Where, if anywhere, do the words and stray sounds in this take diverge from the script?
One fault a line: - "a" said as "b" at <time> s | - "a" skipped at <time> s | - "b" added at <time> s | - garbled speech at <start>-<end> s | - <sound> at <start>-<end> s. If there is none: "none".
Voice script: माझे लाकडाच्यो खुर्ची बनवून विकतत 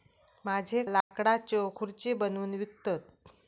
- dropout at 1.0-1.1 s